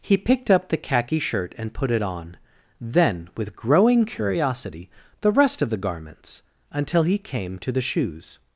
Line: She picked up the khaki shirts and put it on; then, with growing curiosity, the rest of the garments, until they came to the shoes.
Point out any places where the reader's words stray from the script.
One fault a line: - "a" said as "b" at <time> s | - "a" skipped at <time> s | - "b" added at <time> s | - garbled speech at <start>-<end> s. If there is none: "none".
- "She" said as "He" at 0.0 s
- "shirts" said as "shirt" at 1.2 s
- "they" said as "he" at 7.0 s